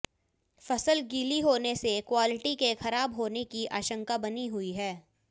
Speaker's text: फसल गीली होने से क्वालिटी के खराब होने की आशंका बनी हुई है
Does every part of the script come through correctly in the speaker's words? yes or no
yes